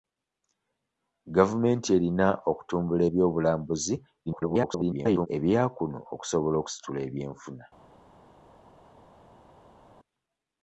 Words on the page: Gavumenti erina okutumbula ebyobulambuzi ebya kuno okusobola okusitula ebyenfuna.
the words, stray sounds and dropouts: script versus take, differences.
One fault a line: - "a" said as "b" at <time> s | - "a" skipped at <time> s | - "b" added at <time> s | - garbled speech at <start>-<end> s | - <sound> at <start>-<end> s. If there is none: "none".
- garbled speech at 4.3-5.3 s